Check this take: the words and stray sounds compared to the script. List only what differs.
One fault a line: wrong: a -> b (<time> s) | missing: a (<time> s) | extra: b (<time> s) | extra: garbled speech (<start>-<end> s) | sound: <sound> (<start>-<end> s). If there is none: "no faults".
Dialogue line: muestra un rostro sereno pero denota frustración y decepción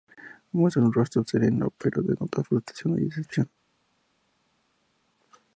no faults